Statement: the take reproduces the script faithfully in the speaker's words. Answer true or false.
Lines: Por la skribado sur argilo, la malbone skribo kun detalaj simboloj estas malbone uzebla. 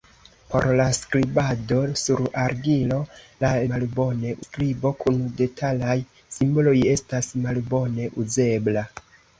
true